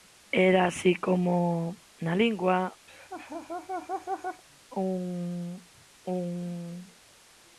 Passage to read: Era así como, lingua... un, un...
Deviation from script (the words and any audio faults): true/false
true